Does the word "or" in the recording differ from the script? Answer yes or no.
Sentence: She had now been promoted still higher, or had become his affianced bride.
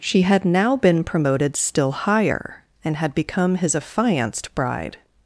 yes